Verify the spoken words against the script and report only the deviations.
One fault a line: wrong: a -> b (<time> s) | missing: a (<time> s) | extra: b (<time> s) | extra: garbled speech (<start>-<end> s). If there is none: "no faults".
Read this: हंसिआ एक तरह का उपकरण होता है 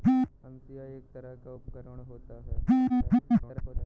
extra: garbled speech (2.9-3.9 s)